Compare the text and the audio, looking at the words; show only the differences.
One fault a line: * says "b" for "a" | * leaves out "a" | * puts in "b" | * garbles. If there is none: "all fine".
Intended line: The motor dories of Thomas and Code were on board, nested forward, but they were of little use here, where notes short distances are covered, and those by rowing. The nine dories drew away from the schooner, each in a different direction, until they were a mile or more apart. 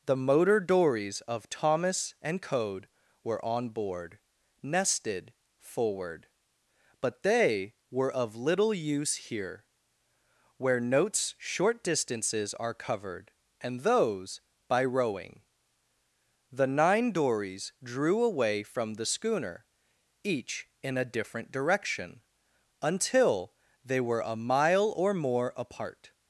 all fine